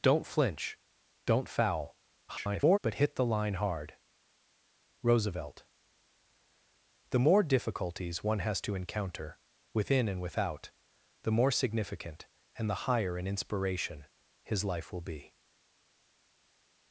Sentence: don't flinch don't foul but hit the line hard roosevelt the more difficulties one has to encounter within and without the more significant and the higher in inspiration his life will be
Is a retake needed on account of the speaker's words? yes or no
yes